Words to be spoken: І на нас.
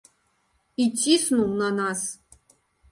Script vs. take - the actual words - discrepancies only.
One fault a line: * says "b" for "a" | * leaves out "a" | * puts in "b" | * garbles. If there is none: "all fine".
* puts in "ціснуў"